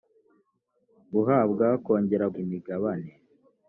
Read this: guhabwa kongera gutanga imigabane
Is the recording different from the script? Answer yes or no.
yes